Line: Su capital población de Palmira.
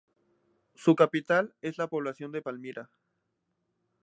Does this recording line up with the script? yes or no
no